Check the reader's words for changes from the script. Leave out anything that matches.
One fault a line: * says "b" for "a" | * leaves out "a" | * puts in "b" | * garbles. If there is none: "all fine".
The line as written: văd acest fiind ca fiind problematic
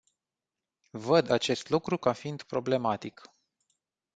* says "lucru" for "fiind"